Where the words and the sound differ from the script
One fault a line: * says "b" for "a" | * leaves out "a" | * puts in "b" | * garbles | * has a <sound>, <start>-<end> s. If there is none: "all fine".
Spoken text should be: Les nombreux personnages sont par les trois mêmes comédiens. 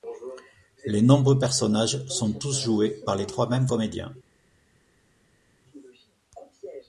* puts in "tous joués"